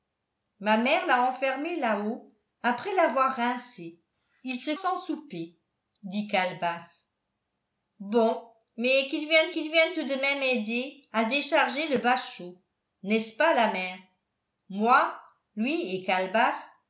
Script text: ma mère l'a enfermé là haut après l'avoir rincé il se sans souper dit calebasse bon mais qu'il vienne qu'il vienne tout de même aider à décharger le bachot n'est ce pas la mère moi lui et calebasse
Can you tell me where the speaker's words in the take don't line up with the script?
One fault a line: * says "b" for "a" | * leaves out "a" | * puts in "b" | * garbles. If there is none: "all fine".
all fine